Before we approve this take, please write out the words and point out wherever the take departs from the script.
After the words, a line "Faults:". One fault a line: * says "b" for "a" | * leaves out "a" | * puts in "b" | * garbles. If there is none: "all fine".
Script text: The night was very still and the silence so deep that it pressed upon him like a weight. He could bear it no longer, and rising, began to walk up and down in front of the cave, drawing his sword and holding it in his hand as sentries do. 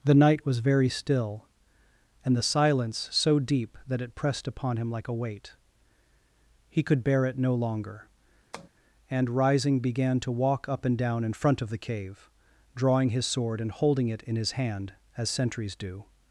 The night was very still and the silence so deep that it pressed upon him like a weight. He could bear it no longer, and rising, began to walk up and down in front of the cave, drawing his sword and holding it in his hand as sentries do.
Faults:
all fine